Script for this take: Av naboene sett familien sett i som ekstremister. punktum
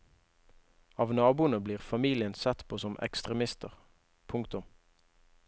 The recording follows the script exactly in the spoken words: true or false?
false